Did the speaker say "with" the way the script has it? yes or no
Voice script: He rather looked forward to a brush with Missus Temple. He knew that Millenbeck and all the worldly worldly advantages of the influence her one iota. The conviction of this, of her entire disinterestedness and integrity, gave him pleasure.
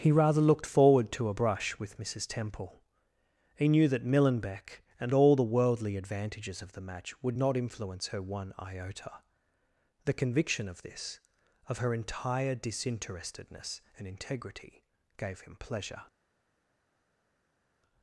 yes